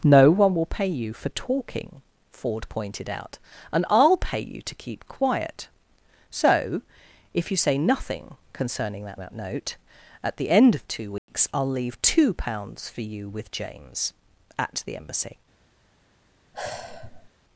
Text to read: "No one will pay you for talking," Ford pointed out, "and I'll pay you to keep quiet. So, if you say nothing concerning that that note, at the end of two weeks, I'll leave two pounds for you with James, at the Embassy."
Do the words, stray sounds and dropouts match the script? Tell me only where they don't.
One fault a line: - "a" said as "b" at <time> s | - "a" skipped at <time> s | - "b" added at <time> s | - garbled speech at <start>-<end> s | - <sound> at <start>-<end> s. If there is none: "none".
- dropout at 11.2-11.3 s
- sigh at 16.5-17.3 s